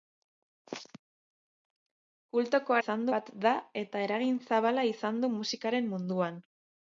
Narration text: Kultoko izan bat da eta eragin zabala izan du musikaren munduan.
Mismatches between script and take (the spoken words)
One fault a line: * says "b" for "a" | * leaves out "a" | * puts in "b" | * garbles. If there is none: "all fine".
all fine